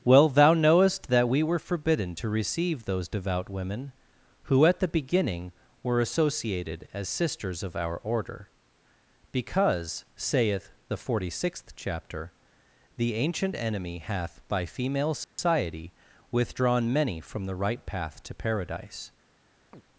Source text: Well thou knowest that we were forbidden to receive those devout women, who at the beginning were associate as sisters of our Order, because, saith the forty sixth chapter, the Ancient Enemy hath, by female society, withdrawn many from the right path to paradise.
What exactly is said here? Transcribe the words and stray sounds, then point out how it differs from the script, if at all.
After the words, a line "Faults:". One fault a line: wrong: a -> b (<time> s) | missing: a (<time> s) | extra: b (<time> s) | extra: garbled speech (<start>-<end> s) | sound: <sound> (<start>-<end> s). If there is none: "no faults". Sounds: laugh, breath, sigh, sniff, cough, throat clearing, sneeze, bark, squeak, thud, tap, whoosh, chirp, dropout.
Well thou knowest that we were forbidden to receive those devout women, who at the beginning were associated as sisters of our Order, because, saith the forty sixth chapter, the Ancient Enemy hath, by female society, withdrawn many from the right path to paradise.
Faults:
wrong: associate -> associated (6.0 s)
sound: dropout (15.2-15.4 s)
sound: chirp (19.7-19.8 s)